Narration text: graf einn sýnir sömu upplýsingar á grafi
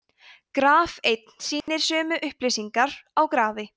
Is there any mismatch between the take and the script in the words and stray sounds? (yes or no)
yes